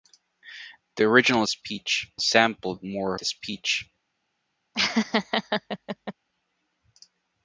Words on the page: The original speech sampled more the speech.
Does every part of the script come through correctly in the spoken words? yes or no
yes